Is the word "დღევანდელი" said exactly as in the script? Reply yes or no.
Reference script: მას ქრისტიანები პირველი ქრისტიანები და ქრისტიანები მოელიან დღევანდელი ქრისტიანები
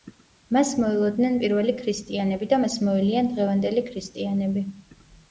yes